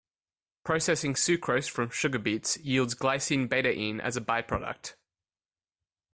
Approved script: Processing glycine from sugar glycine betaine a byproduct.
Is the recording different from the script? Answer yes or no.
yes